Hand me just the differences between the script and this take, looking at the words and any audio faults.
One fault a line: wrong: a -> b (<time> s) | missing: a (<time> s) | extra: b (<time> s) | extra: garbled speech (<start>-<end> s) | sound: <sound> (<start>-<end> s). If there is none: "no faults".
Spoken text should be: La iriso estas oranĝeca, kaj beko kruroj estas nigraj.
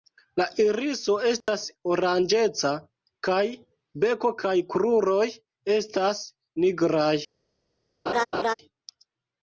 sound: dropout (1.4-1.5 s)
extra: kaj (4.4 s)
sound: laugh (8.1-8.5 s)